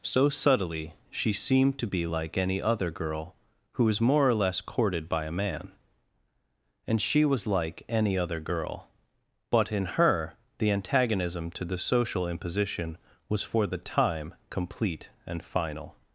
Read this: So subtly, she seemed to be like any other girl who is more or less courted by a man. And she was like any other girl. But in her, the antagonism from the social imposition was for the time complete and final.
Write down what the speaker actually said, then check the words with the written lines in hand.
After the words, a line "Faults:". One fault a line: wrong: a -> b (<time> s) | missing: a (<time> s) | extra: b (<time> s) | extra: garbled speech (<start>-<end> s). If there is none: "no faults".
So subtly, she seemed to be like any other girl who is more or less courted by a man. And she was like any other girl. But in her, the antagonism to the social imposition was for the time complete and final.
Faults:
wrong: from -> to (11.5 s)